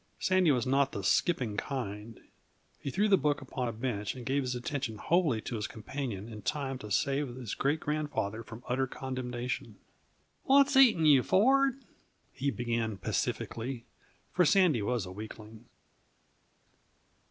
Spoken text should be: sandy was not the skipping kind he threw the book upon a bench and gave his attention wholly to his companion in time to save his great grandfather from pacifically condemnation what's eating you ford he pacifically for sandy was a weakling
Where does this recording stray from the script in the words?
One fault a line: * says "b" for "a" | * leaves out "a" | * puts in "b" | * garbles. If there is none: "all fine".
* says "utter" for "pacifically"
* puts in "began"